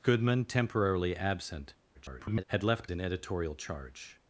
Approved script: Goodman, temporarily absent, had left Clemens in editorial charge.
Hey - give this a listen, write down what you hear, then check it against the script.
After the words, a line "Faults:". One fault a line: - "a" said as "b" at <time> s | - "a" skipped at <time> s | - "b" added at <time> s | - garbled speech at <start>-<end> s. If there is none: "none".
Goodman, temporarily absent, [garbled] had left In editorial charge.
Faults:
- garbled speech at 1.9-2.4 s
- "Clemens" skipped at 2.9 s